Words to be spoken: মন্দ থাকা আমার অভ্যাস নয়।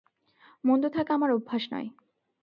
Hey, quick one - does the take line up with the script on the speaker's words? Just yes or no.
yes